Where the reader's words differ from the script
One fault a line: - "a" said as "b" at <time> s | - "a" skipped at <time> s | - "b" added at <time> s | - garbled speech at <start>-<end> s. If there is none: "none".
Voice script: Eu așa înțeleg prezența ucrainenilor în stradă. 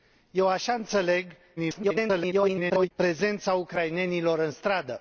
- garbled speech at 1.6-2.9 s